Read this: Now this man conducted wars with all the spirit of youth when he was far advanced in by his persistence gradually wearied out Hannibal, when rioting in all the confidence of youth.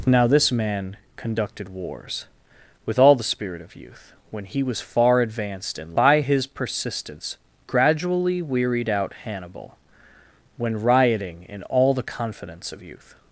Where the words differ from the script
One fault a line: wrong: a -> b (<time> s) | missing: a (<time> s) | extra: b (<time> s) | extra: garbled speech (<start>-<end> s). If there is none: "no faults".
no faults